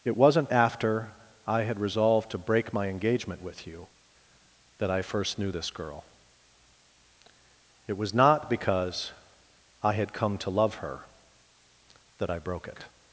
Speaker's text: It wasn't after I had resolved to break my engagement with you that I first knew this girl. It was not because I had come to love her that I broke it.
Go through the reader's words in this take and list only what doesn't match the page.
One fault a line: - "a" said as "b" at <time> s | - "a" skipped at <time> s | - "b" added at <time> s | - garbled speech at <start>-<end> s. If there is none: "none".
none